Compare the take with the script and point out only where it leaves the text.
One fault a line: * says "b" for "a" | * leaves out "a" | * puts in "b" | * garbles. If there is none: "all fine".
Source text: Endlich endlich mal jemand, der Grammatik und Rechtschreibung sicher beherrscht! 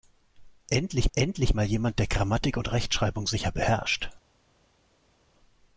all fine